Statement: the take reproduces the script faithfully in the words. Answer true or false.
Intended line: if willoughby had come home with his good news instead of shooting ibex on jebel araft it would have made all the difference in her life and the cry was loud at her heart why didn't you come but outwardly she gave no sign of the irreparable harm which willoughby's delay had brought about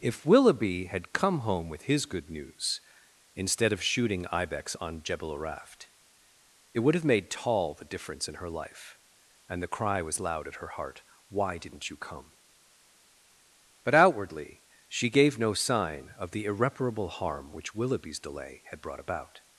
false